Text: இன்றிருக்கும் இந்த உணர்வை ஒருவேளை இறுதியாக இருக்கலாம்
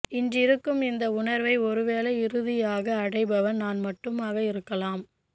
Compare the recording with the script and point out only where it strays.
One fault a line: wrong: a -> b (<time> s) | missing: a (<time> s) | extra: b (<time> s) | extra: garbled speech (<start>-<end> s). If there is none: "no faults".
extra: அடைபவன் நான் மட்டுமாக (3.0 s)